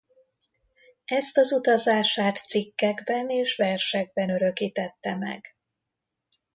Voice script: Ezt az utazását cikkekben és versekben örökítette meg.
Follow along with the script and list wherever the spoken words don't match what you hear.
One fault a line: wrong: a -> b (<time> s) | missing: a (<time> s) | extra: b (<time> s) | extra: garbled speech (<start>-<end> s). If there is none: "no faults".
no faults